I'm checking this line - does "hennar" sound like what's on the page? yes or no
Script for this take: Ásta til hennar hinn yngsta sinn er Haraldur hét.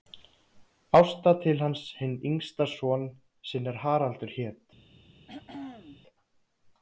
no